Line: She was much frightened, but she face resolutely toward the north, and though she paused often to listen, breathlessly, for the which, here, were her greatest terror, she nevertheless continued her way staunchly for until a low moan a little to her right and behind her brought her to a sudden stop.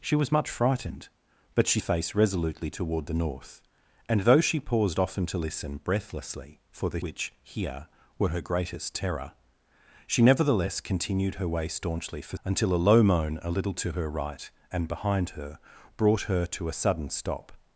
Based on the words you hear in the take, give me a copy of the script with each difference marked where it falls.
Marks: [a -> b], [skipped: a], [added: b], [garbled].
She was much frightened, but she face resolutely toward the north, and though she paused often to listen, breathlessly, for the which, here, were her greatest terror, she nevertheless continued her way staunchly for until a low moan a little to her right and behind her brought her to a sudden stop.